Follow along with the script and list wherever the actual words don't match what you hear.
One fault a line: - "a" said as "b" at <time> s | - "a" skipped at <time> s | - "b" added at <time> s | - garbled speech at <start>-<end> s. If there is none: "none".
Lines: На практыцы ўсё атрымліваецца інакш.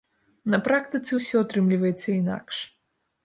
none